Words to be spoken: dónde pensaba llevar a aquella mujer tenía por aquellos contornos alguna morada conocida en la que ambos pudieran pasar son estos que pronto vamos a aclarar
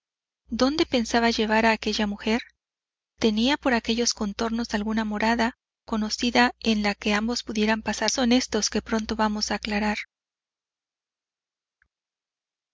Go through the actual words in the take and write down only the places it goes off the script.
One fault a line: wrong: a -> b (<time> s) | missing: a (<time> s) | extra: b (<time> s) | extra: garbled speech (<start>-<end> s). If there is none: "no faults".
no faults